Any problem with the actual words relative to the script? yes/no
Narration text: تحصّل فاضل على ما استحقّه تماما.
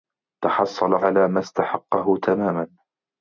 yes